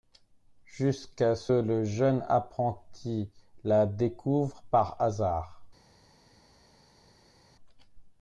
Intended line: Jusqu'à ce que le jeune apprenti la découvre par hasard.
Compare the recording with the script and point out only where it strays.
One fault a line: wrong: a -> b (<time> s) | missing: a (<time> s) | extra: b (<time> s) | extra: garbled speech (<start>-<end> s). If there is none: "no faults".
missing: que (1.5 s)